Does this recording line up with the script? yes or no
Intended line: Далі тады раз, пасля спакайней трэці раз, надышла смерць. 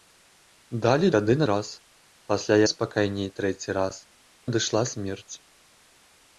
yes